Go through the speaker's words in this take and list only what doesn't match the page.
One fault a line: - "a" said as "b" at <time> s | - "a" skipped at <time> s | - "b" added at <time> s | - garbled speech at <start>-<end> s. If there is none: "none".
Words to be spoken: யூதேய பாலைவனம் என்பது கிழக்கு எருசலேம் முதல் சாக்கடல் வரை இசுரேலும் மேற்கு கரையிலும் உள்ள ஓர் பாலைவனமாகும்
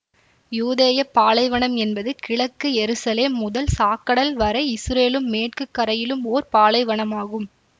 - "உள்ள" skipped at 6.2 s